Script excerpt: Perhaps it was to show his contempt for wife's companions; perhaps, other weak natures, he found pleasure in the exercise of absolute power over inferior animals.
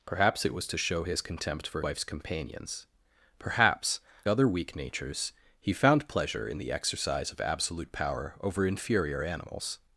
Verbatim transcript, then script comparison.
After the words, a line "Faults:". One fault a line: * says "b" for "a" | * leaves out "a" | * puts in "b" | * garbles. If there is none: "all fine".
Perhaps it was to show his contempt for wife's companions; perhaps, other weak natures, he found pleasure in the exercise of absolute power over inferior animals.
Faults:
all fine